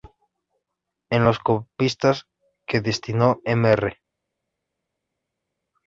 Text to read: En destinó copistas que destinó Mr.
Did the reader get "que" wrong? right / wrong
right